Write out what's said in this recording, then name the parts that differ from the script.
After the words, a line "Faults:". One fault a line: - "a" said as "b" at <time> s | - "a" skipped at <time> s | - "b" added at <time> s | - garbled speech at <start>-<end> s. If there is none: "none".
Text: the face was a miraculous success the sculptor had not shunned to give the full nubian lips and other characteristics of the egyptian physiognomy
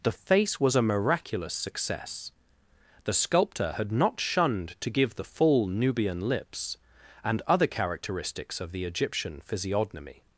the face was a miraculous success the sculptor had not shunned to give the full nubian lips and other characteristics of the egyptian physiognomy
Faults:
none